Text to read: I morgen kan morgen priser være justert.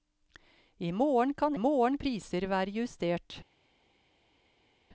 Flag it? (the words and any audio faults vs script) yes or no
no